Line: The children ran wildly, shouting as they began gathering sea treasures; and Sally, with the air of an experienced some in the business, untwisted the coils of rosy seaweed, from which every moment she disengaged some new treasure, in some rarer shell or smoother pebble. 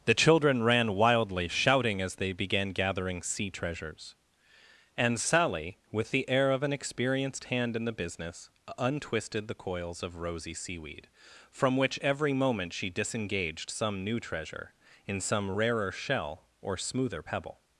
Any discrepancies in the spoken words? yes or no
yes